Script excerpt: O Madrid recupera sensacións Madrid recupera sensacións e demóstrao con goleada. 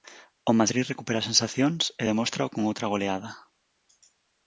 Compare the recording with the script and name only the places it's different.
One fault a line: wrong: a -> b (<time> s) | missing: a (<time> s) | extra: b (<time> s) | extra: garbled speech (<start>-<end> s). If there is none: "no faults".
missing: Madrid recupera sensacións (1.8 s)
extra: outra (2.7 s)